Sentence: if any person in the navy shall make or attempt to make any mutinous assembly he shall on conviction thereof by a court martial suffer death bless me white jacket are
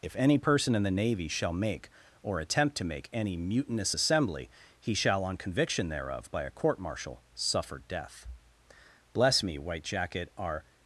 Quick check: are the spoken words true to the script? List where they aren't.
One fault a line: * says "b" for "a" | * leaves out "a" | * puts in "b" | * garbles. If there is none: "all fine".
all fine